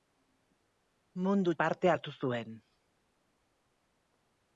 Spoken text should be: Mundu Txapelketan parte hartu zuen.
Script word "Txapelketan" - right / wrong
wrong